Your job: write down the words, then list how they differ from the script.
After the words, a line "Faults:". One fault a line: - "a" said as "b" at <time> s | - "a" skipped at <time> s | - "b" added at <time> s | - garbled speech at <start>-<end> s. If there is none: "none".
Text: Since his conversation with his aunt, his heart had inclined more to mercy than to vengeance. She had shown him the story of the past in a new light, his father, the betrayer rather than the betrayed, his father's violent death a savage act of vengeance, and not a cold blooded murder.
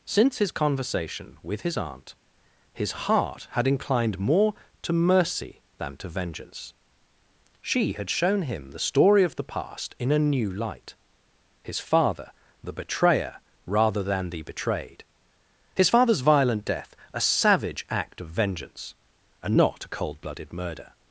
Since his conversation with his aunt, his heart had inclined more to mercy than to vengeance. She had shown him the story of the past in a new light, his father, the betrayer rather than the betrayed, his father's violent death a savage act of vengeance, and not a cold blooded murder.
Faults:
none